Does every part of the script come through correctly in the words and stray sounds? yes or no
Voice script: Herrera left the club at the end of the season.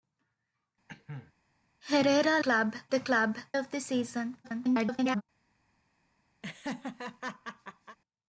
no